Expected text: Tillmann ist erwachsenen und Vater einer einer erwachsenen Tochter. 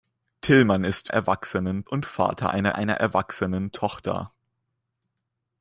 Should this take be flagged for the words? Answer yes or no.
no